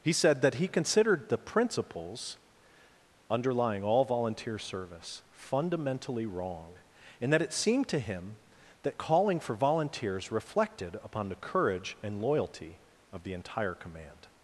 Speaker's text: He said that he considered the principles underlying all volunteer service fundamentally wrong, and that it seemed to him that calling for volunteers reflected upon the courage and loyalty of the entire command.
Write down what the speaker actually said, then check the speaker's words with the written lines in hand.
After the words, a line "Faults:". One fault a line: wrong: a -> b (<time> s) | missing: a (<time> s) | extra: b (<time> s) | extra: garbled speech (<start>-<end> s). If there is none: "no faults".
He said that he considered the principles underlying all volunteer service fundamentally wrong, and that it seemed to him that calling for volunteers reflected upon the courage and loyalty of the entire command.
Faults:
no faults